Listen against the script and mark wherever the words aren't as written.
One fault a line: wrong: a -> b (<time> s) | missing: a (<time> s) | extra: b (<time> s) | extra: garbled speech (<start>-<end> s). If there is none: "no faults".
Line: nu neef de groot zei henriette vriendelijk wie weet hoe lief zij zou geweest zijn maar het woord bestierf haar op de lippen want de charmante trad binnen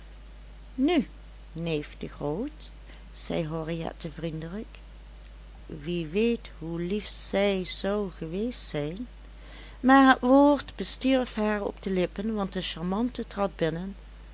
no faults